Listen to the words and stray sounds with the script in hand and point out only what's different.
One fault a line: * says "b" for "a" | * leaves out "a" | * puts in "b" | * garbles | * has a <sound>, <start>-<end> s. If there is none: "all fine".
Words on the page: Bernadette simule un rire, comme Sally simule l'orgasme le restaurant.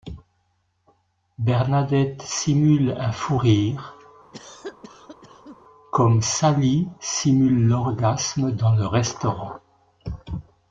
* puts in "fou"
* has a cough, 4.3-5.6 s
* puts in "dans"